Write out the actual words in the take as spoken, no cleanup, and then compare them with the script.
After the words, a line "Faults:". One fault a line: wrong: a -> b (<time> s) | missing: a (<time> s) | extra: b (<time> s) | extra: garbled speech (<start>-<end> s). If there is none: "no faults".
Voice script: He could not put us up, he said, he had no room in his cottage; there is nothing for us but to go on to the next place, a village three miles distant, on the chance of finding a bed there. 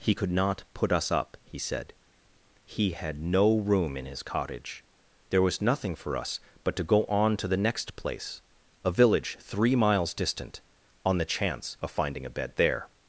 He could not put us up, he said, he had no room in his cottage; there was nothing for us but to go on to the next place, a village three miles distant, on the chance of finding a bed there.
Faults:
wrong: is -> was (5.4 s)